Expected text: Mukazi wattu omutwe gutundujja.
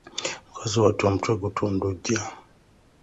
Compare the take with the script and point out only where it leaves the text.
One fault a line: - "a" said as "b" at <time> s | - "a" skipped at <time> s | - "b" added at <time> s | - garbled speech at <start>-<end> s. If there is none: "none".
none